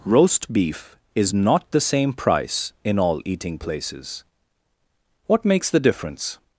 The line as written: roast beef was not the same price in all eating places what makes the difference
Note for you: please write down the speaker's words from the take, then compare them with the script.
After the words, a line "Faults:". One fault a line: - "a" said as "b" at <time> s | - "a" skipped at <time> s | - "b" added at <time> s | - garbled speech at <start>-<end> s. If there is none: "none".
roast beef is not the same price in all eating places what makes the difference
Faults:
- "was" said as "is" at 1.1 s